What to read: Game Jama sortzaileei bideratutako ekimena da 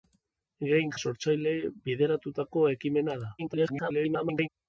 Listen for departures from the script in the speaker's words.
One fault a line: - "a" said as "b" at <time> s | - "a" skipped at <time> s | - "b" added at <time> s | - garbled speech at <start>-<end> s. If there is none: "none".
- "Jama" skipped at 0.9 s
- garbled speech at 3.4-4.5 s